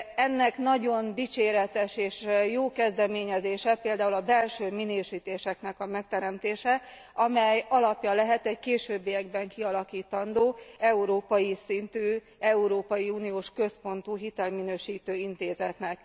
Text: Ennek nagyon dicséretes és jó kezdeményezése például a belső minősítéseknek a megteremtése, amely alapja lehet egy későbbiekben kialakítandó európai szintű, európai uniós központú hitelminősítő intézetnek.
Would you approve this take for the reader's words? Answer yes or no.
yes